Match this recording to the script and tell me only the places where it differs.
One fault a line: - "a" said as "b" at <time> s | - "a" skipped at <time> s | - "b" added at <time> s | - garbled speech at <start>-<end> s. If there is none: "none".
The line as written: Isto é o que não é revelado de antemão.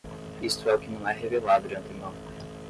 none